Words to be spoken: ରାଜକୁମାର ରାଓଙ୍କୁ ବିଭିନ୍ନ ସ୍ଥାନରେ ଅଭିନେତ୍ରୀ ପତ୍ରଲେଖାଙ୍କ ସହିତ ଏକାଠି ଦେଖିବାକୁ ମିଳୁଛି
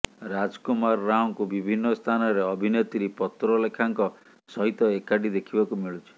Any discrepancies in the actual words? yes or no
no